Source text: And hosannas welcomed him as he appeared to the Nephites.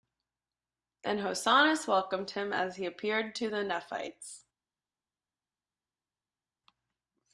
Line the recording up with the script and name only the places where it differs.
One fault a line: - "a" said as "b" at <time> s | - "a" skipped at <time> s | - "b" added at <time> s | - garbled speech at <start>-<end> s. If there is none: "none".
none